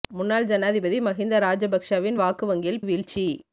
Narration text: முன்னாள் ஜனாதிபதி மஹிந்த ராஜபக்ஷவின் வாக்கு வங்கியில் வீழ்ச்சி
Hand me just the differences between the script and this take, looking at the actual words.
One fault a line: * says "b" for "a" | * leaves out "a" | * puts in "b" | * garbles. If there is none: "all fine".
all fine